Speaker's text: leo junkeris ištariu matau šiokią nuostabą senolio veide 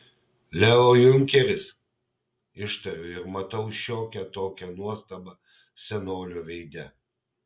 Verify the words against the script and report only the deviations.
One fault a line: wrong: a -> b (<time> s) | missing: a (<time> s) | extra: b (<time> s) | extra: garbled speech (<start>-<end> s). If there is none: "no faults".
extra: ir (3.2 s)
extra: tokią (4.4 s)